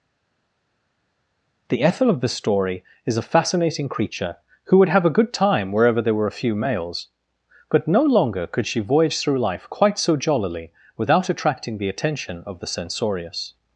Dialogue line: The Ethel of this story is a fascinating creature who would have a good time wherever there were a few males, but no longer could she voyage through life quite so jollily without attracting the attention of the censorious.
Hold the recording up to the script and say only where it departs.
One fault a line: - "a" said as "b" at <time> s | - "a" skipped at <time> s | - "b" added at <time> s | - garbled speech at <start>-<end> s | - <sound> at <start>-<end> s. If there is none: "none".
- "this" said as "the" at 2.2 s